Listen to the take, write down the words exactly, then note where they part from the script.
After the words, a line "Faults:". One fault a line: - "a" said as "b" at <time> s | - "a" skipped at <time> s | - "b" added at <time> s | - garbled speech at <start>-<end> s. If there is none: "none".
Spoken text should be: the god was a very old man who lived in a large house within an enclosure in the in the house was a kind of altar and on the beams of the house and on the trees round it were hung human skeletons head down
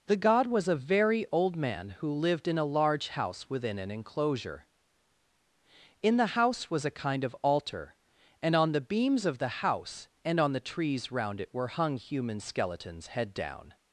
the god was a very old man who lived in a large house within an enclosure in the house was a kind of altar and on the beams of the house and on the trees round it were hung human skeletons head down
Faults:
- "in the" skipped at 6.4 s